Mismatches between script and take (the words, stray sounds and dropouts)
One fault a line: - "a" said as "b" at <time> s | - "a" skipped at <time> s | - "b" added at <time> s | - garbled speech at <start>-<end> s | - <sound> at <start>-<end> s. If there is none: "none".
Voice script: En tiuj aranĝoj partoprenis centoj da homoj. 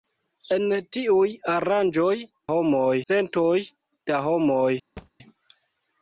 - "partoprenis" said as "homoj" at 2.5 s
- thud at 5.0-5.1 s